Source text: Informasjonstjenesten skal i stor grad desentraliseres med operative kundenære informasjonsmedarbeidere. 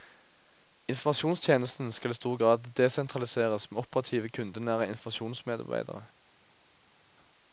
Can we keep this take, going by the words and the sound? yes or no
yes